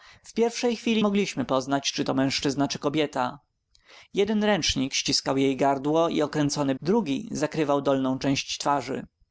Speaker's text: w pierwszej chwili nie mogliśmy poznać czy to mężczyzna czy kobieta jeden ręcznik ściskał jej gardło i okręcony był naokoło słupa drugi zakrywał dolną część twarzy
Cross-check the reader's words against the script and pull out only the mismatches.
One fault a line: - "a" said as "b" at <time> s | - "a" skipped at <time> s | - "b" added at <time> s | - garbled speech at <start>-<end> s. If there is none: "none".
- "nie" skipped at 1.1 s
- "był naokoło słupa" skipped at 6.8 s